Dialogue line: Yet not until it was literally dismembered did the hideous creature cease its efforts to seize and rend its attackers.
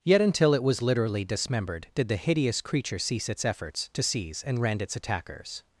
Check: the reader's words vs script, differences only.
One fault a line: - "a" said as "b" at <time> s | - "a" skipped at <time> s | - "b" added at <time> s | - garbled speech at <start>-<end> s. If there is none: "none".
- "not" skipped at 0.2 s